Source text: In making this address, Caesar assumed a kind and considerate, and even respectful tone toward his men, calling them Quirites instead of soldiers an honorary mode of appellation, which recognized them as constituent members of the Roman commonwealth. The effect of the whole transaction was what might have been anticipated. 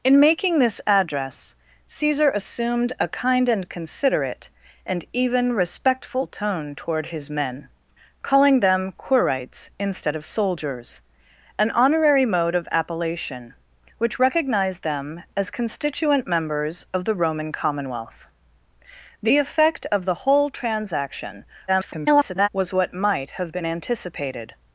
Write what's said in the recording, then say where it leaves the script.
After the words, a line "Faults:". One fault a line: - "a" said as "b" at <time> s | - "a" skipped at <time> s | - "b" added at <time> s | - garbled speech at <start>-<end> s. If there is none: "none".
In making this address, Caesar assumed a kind and considerate, and even respectful tone toward his men, calling them Quirites instead of soldiers an honorary mode of appellation, which recognized them as constituent members of the Roman commonwealth. The effect of the whole transaction [garbled] was what might have been anticipated.
Faults:
- garbled speech at 21.7-22.5 s